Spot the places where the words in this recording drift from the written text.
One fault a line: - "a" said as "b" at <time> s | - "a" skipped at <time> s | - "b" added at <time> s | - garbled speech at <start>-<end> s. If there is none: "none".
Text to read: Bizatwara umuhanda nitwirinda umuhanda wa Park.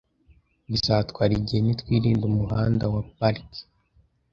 - "umuhanda" said as "igihe" at 1.4 s